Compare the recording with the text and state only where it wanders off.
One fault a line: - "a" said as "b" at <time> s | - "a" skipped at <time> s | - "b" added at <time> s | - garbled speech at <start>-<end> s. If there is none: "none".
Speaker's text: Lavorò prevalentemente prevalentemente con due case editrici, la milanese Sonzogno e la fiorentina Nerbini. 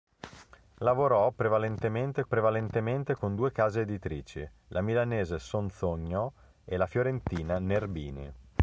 none